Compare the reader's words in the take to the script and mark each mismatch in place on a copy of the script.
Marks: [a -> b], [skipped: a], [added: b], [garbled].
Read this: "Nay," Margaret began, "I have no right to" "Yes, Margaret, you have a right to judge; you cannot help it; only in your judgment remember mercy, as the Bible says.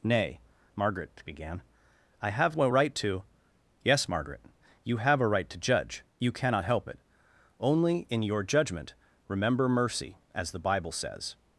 "Nay," Margaret began, "I have no right to" "Yes, Margaret, you have a right to judge; you cannot help it; only in your judgment remember mercy, as the Bible says.